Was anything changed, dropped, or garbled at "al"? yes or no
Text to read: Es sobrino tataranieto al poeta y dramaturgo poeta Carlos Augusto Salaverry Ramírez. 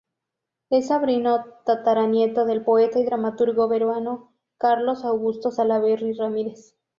yes